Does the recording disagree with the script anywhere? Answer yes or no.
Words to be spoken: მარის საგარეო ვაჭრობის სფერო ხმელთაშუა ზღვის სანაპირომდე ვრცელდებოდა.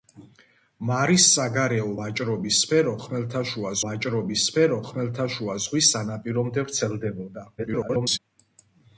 yes